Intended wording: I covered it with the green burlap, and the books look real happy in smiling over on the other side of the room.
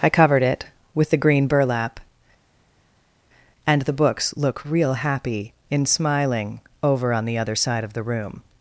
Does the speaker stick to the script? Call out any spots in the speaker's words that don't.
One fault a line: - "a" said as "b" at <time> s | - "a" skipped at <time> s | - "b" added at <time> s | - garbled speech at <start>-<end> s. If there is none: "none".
none